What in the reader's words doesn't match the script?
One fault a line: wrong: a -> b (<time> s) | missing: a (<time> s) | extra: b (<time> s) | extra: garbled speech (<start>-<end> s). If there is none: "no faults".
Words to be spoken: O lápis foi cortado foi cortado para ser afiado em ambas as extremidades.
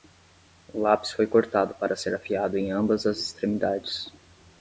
missing: foi cortado (1.8 s)